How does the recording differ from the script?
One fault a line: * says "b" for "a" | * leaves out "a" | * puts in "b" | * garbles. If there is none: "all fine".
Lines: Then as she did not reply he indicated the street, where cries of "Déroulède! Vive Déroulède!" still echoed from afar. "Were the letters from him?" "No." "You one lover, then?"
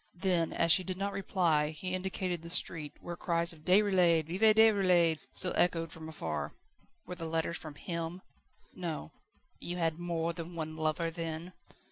* puts in "had more than"